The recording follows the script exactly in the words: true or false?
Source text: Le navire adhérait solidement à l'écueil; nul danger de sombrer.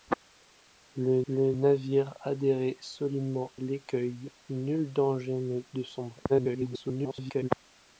false